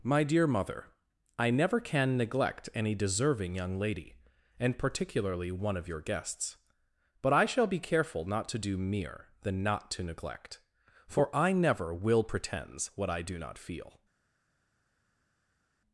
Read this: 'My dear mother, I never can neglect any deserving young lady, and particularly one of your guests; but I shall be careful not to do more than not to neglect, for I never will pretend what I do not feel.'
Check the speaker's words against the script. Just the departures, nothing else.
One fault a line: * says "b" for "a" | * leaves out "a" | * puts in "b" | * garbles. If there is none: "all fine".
* says "mere" for "more"
* says "pretends" for "pretend"